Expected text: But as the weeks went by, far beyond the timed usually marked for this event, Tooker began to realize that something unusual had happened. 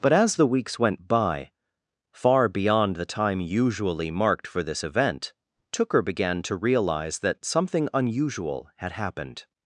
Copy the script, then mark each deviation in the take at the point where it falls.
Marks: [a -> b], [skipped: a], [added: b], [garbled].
But as the weeks went by, far beyond the [timed -> time] usually marked for this event, Tooker began to realize that something unusual had happened.